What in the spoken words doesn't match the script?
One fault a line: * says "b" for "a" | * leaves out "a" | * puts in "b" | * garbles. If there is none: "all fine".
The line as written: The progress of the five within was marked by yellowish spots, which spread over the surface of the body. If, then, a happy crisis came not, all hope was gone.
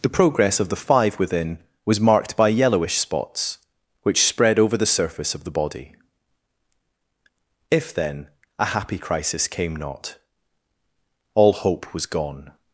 all fine